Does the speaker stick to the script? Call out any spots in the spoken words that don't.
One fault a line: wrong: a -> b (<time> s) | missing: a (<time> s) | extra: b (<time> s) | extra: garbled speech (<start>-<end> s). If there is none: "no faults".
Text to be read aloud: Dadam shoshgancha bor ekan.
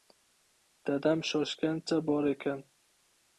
no faults